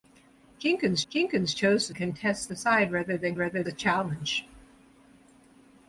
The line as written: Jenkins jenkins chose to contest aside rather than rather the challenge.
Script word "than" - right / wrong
right